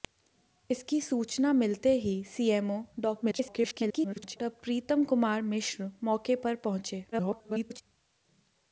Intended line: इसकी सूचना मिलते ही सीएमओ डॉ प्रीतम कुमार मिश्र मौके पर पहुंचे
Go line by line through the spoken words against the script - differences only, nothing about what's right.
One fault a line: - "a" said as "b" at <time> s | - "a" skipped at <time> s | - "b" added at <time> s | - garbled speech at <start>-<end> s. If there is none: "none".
- garbled speech at 3.2-4.4 s
- garbled speech at 7.1-7.8 s